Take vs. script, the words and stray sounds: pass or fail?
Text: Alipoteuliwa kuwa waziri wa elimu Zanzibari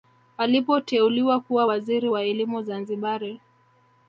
pass